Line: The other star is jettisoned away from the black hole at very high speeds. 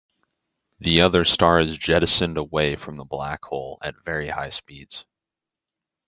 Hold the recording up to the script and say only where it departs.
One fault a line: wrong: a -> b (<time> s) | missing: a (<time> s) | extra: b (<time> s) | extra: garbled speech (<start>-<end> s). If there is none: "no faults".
no faults